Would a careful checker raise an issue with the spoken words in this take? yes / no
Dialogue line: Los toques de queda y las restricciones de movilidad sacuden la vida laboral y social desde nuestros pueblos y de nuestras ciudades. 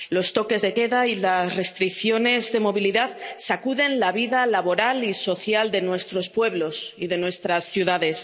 yes